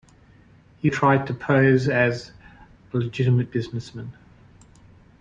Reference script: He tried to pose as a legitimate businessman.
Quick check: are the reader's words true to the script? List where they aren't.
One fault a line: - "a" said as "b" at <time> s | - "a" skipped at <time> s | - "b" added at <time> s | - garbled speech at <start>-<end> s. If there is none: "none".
none